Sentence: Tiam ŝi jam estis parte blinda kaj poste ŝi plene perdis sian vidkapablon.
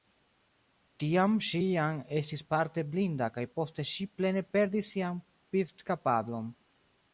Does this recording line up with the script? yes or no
yes